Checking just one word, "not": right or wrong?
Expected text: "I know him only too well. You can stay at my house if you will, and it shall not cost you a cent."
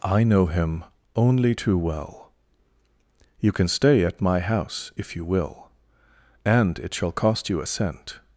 wrong